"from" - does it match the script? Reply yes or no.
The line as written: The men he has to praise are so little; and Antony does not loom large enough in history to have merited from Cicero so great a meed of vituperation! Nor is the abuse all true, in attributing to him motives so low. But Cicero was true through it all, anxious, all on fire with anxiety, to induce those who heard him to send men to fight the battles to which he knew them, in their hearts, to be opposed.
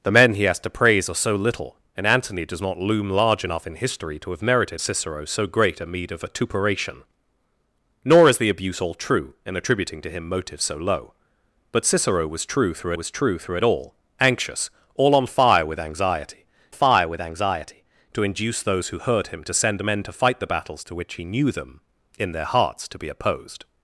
no